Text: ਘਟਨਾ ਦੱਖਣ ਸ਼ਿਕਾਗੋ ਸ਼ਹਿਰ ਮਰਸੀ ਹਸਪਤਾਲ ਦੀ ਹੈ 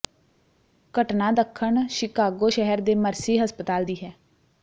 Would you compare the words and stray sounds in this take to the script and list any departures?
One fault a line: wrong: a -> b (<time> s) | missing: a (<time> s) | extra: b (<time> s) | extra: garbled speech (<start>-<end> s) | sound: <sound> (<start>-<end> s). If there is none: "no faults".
extra: ਦੇ (2.8 s)